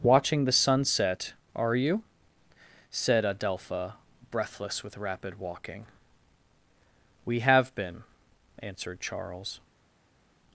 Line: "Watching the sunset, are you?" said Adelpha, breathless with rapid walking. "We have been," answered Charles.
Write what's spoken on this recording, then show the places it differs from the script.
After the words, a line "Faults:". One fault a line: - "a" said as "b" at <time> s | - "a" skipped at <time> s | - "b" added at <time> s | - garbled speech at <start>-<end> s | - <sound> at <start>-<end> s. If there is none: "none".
"Watching the sunset, are you?" said Adelpha, breathless with rapid walking. "We have been," answered Charles.
Faults:
none